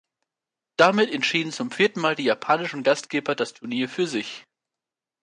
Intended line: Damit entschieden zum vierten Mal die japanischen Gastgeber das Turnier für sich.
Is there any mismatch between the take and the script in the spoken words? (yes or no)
no